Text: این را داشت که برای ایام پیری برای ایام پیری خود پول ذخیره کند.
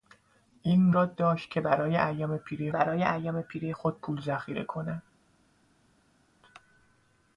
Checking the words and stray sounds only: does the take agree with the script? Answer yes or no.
yes